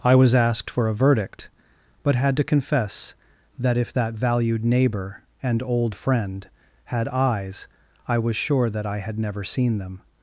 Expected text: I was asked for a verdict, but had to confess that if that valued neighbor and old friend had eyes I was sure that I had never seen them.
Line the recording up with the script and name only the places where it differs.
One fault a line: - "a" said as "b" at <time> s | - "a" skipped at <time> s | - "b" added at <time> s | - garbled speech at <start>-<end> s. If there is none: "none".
none